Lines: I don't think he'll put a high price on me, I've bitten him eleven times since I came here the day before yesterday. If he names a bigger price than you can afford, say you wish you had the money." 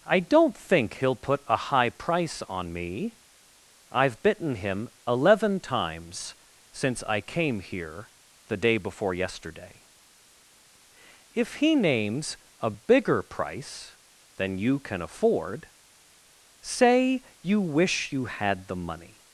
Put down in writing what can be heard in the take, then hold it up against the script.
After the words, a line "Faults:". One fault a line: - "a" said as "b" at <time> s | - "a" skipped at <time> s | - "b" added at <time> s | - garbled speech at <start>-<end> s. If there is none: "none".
I don't think he'll put a high price on me, I've bitten him eleven times since I came here the day before yesterday. If he names a bigger price than you can afford, say you wish you had the money."
Faults:
none